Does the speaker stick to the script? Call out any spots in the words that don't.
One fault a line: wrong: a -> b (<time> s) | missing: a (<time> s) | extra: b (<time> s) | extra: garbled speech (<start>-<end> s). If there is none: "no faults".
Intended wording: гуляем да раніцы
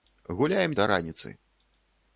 no faults